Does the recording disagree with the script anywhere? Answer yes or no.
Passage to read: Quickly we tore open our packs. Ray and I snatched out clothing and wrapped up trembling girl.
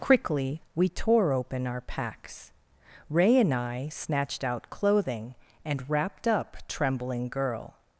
no